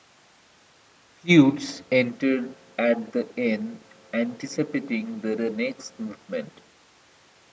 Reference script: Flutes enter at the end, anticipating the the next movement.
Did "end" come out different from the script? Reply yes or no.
no